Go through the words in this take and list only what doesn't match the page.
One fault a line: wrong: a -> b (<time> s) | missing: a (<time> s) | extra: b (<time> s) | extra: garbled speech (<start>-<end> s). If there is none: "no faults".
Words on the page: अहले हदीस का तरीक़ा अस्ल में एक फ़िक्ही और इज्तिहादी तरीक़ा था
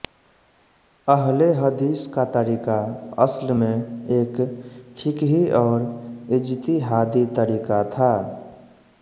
no faults